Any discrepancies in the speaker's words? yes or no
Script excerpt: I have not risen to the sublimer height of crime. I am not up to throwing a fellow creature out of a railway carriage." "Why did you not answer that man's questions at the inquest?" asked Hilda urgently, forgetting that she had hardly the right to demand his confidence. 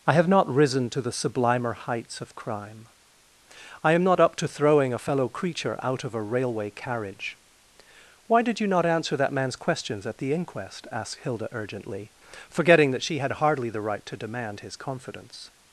yes